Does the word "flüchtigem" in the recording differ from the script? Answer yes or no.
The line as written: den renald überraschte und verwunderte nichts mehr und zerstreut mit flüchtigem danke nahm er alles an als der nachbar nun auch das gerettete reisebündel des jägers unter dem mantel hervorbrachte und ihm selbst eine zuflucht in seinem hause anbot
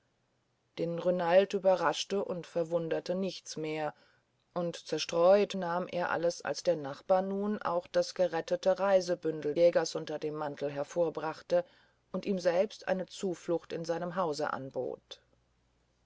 yes